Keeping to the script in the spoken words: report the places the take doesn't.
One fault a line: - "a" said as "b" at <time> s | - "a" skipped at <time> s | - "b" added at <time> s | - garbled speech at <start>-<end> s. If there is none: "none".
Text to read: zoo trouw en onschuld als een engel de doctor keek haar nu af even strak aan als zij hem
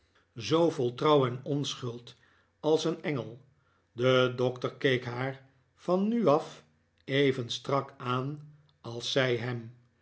- "vol" added at 0.7 s
- "van" added at 5.8 s